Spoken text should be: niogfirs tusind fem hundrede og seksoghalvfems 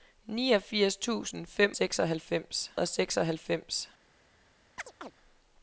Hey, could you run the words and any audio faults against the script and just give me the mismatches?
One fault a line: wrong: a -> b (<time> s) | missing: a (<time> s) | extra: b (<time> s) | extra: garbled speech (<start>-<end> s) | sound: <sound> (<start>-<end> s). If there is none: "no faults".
wrong: hundrede -> seksoghalvfems (1.7 s)
sound: chirp (4.8-5.1 s)